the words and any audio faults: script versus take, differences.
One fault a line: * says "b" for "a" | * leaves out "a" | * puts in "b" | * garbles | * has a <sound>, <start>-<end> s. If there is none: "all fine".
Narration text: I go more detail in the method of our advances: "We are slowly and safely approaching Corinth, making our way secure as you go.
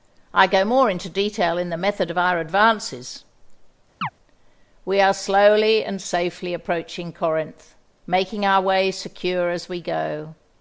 * puts in "into"
* has a chirp, 4.0-4.1 s
* says "we" for "you"